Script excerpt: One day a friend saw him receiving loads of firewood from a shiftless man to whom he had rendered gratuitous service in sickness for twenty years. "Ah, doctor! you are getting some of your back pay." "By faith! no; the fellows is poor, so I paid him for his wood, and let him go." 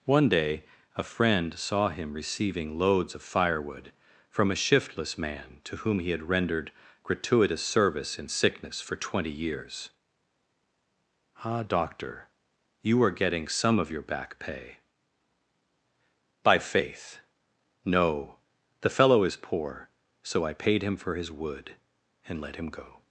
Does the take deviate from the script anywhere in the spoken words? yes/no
yes